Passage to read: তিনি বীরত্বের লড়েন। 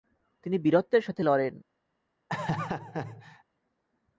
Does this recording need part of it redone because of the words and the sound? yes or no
yes